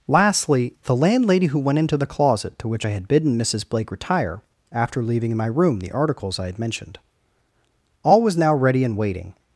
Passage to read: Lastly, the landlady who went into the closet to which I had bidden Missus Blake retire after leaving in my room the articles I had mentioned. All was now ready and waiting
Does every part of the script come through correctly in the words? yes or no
yes